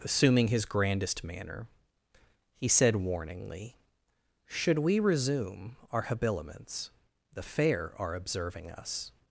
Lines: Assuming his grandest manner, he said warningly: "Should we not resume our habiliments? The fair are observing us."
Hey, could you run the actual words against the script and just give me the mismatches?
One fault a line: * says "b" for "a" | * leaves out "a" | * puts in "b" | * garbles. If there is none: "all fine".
* leaves out "not"